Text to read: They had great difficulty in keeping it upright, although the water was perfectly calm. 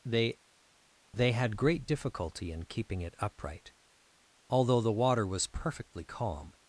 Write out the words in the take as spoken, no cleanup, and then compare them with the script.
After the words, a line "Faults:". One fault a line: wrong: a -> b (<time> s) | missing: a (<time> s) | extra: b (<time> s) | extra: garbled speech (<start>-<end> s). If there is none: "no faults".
They they had great difficulty in keeping it upright, although the water was perfectly calm.
Faults:
extra: they (1.1 s)